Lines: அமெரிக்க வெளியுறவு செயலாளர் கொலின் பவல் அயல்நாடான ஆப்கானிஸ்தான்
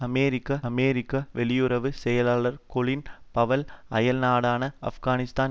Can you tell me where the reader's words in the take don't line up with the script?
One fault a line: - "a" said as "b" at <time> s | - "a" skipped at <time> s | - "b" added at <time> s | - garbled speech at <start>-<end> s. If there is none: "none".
- "அமெரிக்க" added at 0.6 s